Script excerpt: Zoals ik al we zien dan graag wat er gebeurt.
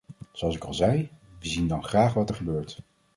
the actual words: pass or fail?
fail